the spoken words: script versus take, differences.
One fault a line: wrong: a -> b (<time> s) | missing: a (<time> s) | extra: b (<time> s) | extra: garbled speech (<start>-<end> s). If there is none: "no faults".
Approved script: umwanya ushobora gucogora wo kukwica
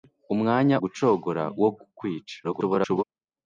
missing: ushobora (0.8 s)
extra: garbled speech (2.4-3.0 s)